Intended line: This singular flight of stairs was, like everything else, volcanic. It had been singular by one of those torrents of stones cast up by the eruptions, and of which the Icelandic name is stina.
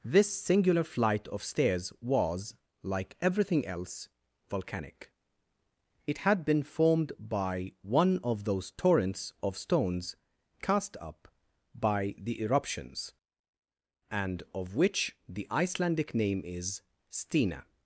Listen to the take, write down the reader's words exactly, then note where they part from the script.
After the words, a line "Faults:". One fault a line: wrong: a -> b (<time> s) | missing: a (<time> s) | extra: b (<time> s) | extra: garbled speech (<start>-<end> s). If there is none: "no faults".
This singular flight of stairs was, like everything else, volcanic. It had been formed by one of those torrents of stones cast up by the eruptions, and of which the Icelandic name is stina.
Faults:
wrong: singular -> formed (6.6 s)